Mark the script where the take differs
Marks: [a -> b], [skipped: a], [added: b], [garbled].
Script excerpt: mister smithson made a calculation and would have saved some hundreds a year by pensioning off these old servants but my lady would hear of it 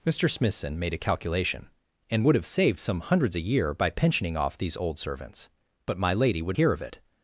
mister smithson made a calculation and would have saved some hundreds a year by pensioning off these old servants but my lady would hear of it